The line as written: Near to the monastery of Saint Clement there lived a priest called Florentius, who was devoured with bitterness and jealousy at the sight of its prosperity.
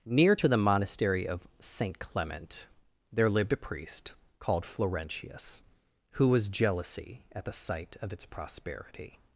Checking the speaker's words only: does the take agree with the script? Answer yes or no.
no